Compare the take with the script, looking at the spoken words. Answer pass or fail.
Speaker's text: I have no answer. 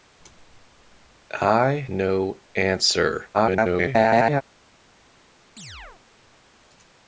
fail